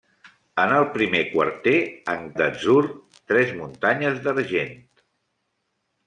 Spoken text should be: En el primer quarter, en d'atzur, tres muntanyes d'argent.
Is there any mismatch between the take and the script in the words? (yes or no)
no